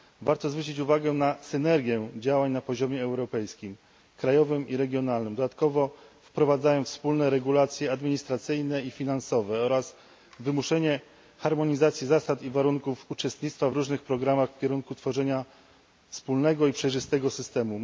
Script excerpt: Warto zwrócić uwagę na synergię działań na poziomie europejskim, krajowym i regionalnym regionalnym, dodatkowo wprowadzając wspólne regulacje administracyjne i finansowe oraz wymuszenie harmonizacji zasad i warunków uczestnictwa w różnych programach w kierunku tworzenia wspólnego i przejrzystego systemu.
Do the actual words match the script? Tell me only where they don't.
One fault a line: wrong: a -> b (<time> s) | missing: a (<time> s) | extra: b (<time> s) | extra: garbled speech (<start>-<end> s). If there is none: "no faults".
missing: regionalnym (5.3 s)